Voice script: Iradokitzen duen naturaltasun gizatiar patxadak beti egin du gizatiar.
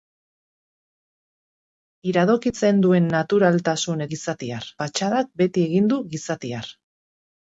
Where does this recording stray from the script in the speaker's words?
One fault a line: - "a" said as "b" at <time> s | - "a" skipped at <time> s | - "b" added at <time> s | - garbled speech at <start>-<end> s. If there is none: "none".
none